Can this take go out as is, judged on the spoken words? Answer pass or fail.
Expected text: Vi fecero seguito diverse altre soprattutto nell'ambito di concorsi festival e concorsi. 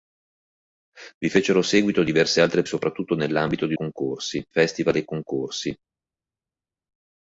pass